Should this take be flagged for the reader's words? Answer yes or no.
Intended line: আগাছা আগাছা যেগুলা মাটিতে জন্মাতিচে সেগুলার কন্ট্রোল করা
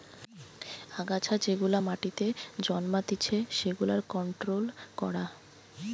yes